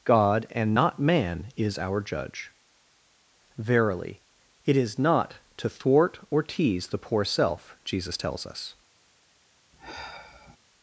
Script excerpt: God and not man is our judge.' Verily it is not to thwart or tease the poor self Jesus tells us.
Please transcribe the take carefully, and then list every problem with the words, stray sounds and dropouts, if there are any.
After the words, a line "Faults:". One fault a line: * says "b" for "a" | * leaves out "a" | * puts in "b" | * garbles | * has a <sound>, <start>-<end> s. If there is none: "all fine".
God and not man is our judge.' Verily it is not to thwart or tease the poor self Jesus tells us.
Faults:
* has a sigh, 9.7-10.6 s